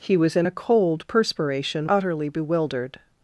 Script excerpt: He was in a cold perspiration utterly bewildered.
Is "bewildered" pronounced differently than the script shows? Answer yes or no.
no